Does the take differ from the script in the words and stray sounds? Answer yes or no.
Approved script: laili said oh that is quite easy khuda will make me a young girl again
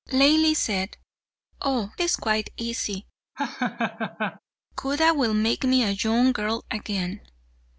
yes